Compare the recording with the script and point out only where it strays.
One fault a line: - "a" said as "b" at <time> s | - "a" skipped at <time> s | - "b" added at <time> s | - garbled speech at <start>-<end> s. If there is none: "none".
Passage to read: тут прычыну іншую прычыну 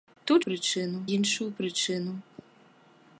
none